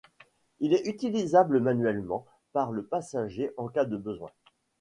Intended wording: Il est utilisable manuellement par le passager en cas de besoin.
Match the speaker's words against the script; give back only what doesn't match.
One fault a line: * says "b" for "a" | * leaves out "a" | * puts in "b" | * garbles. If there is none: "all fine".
all fine